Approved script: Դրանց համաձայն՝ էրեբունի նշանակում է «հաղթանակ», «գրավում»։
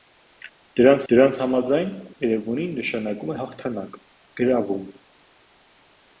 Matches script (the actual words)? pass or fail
fail